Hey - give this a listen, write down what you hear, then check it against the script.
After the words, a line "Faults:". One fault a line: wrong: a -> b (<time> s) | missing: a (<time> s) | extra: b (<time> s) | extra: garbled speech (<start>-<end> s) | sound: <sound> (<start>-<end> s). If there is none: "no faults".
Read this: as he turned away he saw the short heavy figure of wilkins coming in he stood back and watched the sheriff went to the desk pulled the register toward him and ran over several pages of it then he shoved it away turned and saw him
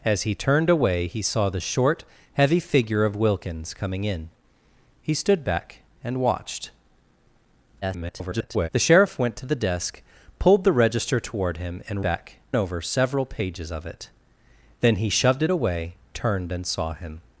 as he turned away he saw the short heavy figure of wilkins coming in he stood back and watched [garbled] the sheriff went to the desk pulled the register toward him and back over several pages of it then he shoved it away turned and saw him
Faults:
extra: garbled speech (7.8-8.7 s)
wrong: ran -> back (12.0 s)